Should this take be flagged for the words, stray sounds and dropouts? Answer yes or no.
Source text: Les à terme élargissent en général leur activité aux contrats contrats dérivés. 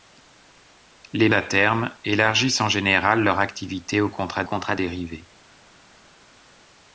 no